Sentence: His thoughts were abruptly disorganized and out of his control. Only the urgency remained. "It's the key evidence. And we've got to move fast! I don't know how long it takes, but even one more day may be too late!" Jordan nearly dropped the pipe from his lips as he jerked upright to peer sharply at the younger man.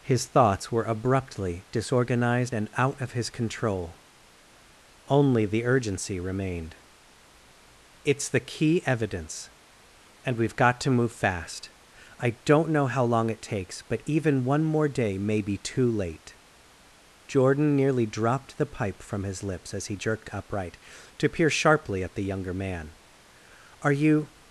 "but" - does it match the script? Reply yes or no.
yes